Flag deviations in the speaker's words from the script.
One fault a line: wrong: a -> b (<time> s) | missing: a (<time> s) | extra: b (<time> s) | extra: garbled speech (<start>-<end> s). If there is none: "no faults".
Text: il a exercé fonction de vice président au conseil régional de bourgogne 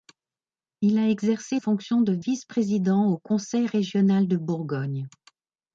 no faults